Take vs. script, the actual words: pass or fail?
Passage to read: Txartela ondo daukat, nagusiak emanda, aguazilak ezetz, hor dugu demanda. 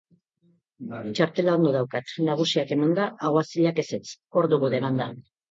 pass